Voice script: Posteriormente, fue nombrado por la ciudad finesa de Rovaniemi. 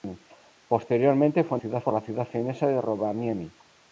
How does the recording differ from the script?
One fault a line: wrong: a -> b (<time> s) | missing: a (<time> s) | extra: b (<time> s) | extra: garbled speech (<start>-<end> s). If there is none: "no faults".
wrong: nombrado -> ciudad (1.6 s)